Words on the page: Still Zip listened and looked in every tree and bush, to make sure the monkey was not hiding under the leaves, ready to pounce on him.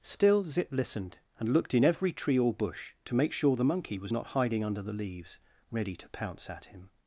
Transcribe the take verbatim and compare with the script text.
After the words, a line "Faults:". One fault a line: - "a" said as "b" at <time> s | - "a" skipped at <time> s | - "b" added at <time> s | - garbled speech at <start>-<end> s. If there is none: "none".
Still Zip listened and looked in every tree or bush, to make sure the monkey was not hiding under the leaves, ready to pounce at him.
Faults:
- "and" said as "or" at 2.4 s
- "on" said as "at" at 6.5 s